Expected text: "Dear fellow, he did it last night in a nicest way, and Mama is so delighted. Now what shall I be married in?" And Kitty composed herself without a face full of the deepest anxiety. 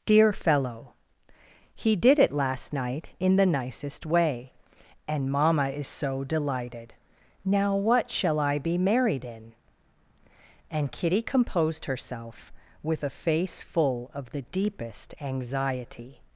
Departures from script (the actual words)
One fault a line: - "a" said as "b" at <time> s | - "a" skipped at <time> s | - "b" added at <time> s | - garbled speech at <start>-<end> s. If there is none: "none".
- "a" said as "the" at 3.4 s
- "without" said as "with" at 12.8 s